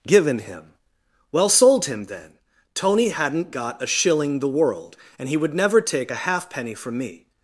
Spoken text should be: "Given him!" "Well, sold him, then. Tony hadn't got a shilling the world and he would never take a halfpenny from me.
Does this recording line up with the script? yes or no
yes